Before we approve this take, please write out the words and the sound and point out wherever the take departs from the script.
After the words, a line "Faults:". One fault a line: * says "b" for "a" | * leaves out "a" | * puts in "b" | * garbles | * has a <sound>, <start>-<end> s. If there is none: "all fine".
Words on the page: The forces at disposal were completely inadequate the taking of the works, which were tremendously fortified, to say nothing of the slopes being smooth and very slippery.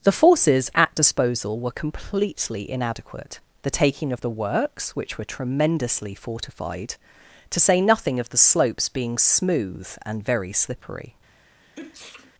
The forces at disposal were completely inadequate the taking of the works, which were tremendously fortified, to say nothing of the slopes being smooth and very slippery.
Faults:
* has a sneeze, 11.6-12.3 s